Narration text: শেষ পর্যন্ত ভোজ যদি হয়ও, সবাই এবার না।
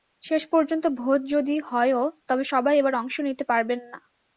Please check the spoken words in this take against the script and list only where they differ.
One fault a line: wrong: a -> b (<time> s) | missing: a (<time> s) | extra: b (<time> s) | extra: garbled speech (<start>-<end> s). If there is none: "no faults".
extra: তবে (2.3 s)
extra: অংশ নিতে পারবেন (2.9 s)